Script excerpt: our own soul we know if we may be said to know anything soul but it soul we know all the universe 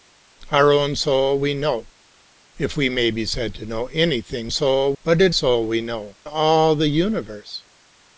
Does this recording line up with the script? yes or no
yes